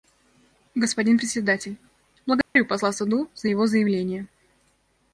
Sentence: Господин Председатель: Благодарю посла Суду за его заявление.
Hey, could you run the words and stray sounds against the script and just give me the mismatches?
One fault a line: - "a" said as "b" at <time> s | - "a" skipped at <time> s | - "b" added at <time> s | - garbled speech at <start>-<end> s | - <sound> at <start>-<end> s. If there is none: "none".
- dropout at 2.4-2.6 s